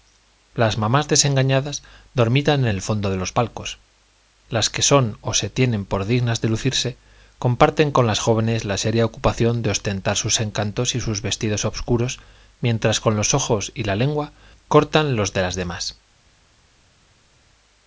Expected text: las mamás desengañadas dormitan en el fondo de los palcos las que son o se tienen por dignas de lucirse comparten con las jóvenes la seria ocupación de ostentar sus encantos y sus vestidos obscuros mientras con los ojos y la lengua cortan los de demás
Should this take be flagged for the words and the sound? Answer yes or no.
yes